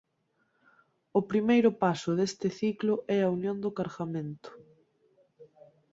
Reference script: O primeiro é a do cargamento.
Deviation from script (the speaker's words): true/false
true